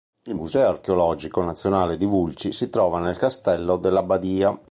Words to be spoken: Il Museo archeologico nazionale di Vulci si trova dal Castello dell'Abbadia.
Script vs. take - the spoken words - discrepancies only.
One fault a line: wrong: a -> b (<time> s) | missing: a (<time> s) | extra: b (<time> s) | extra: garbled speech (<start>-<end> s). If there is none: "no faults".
wrong: dal -> nel (3.0 s)